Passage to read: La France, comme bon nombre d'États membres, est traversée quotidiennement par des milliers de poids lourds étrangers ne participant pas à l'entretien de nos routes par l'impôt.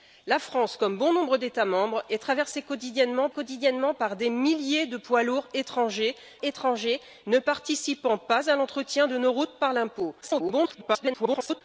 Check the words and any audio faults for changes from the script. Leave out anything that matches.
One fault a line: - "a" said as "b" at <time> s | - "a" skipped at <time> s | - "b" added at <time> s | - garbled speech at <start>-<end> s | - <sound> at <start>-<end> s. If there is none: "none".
- "quotidiennement" added at 3.3 s
- "étrangers" added at 6.4 s
- garbled speech at 10.2-11.6 s